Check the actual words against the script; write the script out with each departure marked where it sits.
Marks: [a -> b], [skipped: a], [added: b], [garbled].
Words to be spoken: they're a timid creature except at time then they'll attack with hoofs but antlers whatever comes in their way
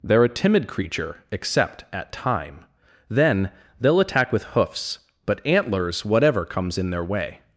they're a timid creature except at time then they'll attack with hoofs but antlers whatever comes in their way